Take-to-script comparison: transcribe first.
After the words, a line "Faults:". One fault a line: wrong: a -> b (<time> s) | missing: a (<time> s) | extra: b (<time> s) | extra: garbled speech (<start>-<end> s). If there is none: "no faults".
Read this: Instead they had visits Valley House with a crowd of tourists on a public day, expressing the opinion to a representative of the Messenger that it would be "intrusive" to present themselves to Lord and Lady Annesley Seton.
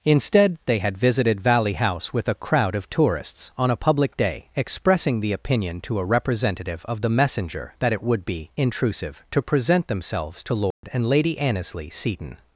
Instead they had visited Valley House with a crowd of tourists on a public day, expressing the opinion to a representative of the Messenger that it would be "intrusive" to present themselves to Lord and Lady Annesley Seton.
Faults:
wrong: visits -> visited (1.0 s)